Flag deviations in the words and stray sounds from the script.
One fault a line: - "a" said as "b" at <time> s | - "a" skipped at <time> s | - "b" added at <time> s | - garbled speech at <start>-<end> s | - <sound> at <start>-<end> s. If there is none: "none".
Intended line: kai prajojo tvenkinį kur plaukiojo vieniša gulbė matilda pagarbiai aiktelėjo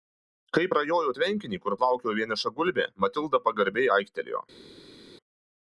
none